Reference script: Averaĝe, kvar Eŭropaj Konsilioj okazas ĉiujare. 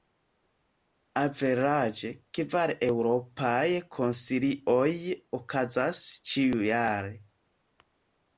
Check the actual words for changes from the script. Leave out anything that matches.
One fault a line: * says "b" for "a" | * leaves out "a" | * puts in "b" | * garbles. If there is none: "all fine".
all fine